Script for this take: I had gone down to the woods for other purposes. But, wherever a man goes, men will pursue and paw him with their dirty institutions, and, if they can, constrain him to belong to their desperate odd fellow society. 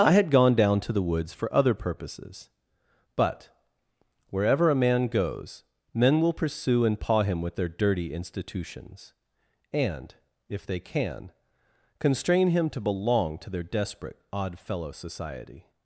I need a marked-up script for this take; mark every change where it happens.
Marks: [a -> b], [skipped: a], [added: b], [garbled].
I had gone down to the woods for other purposes. But, wherever a man goes, men will pursue and paw him with their dirty institutions, and, if they can, constrain him to belong to their desperate odd fellow society.